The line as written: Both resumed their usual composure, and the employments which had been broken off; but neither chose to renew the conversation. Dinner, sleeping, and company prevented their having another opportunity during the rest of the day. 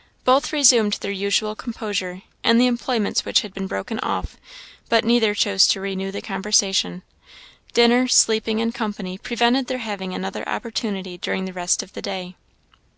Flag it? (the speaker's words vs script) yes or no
no